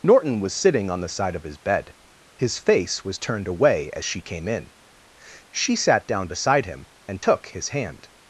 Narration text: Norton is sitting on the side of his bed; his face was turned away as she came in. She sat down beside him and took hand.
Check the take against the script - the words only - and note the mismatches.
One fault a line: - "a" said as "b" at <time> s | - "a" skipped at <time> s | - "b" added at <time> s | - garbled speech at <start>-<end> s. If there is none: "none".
- "is" said as "was" at 0.4 s
- "his" added at 7.5 s